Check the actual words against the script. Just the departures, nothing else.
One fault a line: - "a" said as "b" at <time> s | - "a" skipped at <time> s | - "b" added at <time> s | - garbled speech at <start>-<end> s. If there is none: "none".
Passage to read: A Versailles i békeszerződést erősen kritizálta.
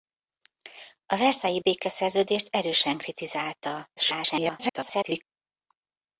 - garbled speech at 4.0-5.2 s